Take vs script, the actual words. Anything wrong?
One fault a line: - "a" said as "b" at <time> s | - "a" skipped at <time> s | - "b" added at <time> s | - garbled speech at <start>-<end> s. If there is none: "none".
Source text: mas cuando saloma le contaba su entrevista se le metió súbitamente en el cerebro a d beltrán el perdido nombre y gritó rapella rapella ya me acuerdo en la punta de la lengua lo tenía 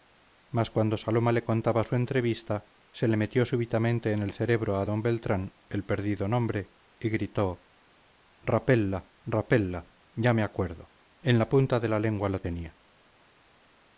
none